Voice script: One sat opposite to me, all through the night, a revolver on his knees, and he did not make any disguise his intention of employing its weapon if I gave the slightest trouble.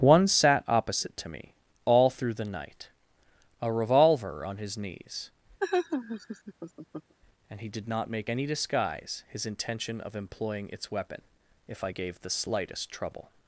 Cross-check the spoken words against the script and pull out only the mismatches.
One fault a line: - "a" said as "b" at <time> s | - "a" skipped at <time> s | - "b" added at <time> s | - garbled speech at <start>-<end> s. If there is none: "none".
none